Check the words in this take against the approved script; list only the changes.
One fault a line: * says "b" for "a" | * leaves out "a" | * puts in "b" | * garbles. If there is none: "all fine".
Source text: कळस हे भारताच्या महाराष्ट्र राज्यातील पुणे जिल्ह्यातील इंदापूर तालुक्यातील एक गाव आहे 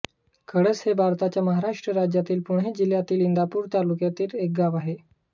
all fine